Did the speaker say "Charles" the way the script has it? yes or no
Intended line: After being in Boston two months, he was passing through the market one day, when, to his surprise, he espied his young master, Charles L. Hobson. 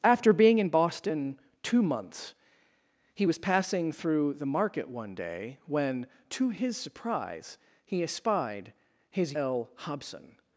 no